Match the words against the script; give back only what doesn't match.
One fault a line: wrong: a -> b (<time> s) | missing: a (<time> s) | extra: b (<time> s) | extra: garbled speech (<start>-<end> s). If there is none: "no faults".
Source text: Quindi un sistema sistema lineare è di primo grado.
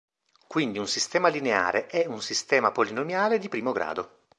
missing: sistema (1.3 s)
extra: un sistema polinomiale (2.1 s)